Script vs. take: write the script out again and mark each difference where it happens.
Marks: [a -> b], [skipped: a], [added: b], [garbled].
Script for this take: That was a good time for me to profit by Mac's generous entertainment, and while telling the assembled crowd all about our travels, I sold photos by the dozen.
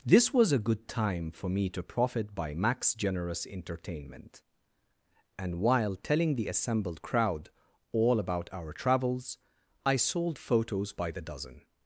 [That -> This] was a good time for me to profit by Mac's generous entertainment, and while telling the assembled crowd all about our travels, I sold photos by the dozen.